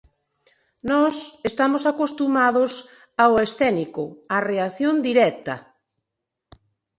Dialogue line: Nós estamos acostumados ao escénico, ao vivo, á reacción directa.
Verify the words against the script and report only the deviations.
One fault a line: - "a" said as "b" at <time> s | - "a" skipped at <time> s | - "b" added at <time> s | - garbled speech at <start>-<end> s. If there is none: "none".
- "ao vivo" skipped at 4.0 s